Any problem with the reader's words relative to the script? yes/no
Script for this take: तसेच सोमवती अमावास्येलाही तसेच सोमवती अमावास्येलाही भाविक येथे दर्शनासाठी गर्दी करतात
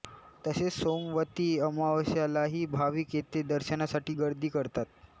yes